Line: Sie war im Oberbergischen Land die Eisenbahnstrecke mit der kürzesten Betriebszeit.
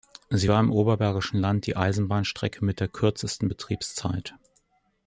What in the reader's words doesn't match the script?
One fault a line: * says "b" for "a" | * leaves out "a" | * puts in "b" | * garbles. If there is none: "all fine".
all fine